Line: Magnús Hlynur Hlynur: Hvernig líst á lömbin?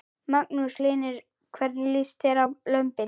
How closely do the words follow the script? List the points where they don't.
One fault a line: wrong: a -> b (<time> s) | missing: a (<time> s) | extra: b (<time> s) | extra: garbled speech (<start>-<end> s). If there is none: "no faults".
missing: Hlynur (1.2 s)
extra: þér (2.3 s)